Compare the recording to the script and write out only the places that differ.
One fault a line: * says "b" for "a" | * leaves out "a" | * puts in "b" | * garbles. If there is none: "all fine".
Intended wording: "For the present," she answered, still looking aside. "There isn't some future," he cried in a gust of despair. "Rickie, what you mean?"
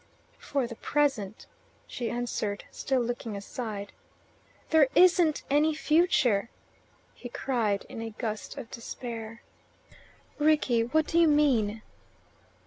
* says "any" for "some"
* puts in "do"